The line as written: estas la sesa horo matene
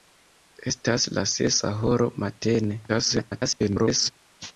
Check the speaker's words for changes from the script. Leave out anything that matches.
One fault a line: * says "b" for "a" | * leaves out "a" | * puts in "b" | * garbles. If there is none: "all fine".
* garbles